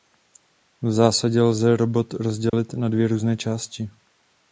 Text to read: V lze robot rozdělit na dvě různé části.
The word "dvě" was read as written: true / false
true